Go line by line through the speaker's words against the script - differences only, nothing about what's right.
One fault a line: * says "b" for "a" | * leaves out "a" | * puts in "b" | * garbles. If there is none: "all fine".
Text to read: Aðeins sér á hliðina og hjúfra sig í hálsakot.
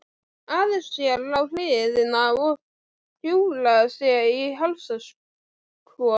all fine